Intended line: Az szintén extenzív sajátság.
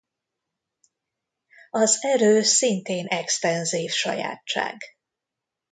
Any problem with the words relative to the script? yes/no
yes